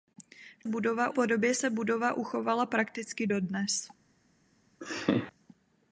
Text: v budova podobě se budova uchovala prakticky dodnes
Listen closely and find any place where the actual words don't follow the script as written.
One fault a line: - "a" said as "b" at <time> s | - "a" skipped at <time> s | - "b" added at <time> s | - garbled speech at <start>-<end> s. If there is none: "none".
none